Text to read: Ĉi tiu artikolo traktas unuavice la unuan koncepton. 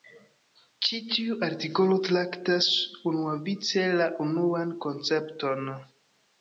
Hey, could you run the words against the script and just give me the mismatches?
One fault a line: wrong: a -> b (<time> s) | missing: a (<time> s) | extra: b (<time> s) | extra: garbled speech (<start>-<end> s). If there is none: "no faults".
no faults